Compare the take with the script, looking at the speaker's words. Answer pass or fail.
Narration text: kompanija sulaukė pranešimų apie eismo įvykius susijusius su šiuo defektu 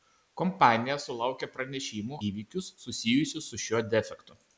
fail